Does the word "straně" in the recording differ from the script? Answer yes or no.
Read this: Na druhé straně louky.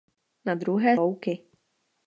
yes